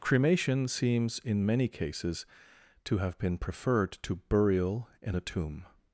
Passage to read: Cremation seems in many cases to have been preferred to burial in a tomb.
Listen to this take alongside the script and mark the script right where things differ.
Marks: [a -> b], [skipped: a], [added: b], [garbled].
Cremation seems in many cases to have been preferred to burial in a tomb.